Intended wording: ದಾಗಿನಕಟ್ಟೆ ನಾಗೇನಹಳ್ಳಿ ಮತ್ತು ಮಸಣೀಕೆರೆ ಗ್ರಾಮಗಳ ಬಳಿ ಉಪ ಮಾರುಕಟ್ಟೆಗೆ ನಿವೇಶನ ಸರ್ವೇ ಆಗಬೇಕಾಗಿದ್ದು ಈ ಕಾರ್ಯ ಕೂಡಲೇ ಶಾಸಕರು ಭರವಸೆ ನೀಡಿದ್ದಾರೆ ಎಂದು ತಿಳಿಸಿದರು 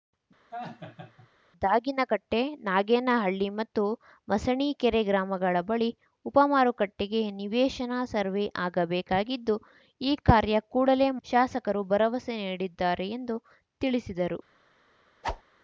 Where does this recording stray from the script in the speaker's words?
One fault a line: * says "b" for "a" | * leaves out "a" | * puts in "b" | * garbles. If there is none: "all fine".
all fine